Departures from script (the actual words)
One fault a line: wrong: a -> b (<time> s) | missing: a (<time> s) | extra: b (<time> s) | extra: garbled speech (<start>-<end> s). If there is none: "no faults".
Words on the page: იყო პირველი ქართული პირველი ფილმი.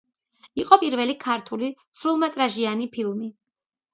wrong: პირველი -> სრულმეტრაჟიანი (2.0 s)